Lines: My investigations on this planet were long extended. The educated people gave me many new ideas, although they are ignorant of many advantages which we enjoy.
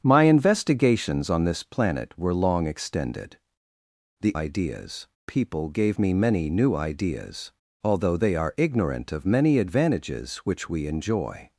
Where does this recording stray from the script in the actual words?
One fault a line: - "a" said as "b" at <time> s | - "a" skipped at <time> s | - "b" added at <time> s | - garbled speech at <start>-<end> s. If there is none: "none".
- "educated" said as "ideas" at 4.3 s